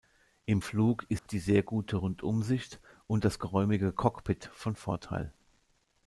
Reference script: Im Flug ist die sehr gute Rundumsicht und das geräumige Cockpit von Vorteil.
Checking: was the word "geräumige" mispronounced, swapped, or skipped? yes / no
no